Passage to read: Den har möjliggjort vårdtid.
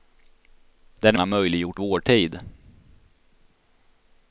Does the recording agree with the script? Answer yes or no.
yes